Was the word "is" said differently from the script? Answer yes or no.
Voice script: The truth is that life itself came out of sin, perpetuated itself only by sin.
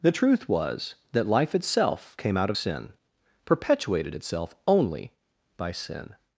yes